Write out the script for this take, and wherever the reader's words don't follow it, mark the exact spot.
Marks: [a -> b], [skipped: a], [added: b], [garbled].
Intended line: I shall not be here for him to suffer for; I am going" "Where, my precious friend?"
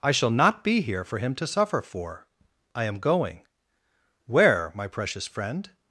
I shall not be here for him to suffer for; I am going" "Where, my precious friend?"